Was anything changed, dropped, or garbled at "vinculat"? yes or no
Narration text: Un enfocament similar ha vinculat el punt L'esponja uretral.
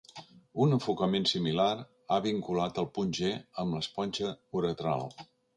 no